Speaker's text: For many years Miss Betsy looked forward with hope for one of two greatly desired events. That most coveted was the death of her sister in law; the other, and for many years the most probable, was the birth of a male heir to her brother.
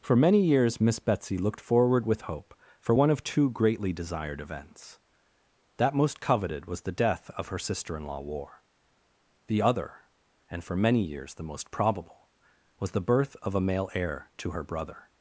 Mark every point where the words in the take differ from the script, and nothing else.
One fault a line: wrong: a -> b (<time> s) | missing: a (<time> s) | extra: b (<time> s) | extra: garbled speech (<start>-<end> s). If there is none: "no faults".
extra: war (8.2 s)